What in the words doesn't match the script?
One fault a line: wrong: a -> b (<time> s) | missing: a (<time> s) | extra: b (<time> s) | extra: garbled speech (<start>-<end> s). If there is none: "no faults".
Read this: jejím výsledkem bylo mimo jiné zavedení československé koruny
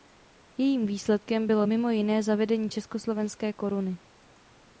no faults